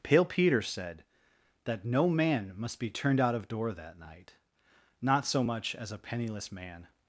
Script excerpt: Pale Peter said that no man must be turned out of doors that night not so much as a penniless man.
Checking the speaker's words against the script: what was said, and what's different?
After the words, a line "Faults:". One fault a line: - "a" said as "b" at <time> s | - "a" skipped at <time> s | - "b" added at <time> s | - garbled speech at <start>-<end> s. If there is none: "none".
Pale Peter said that no man must be turned out of door that night not so much as a penniless man.
Faults:
- "doors" said as "door" at 3.5 s